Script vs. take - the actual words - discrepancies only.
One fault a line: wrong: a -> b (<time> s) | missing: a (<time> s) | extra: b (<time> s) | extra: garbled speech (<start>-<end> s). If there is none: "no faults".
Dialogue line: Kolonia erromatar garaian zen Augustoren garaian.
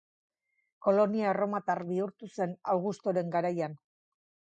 wrong: garaian -> bihurtu (1.9 s)